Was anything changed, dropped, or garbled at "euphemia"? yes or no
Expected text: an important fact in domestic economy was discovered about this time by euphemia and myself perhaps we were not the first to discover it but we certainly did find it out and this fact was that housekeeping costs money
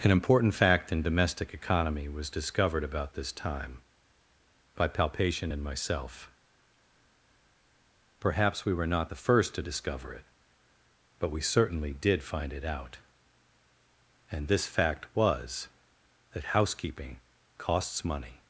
yes